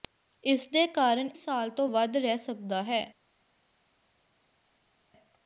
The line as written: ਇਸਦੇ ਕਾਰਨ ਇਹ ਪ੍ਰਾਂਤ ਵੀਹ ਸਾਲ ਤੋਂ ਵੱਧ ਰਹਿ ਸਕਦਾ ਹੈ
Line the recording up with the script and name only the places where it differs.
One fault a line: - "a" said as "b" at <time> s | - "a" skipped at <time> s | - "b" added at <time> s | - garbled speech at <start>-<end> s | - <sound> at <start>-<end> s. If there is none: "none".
- "ਇਹ ਪ੍ਰਾਂਤ ਵੀਹ" skipped at 1.3 s